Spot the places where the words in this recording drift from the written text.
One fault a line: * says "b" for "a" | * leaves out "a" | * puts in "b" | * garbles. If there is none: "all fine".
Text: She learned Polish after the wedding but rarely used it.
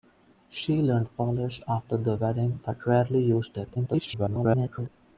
* garbles